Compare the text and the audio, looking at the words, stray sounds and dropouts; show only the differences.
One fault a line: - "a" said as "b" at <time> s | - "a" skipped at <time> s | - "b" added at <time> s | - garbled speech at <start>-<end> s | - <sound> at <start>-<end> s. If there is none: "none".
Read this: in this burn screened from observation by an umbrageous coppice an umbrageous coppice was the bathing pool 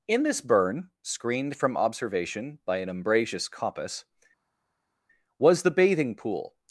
- "an umbrageous coppice" skipped at 4.0 s